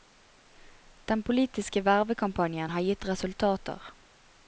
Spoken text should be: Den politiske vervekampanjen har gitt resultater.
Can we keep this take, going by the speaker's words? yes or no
yes